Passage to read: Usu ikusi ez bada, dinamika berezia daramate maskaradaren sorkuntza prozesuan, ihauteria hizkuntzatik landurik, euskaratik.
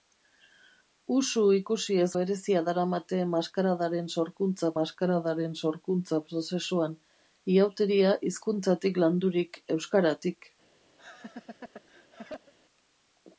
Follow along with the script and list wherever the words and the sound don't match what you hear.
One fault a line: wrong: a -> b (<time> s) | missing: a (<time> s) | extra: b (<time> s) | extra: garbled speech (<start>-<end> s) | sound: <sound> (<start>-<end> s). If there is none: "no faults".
wrong: bada dinamika berezia daramate -> berezia daramate maskaradaren sorkuntza (2.2 s)
sound: laugh (11.0-12.5 s)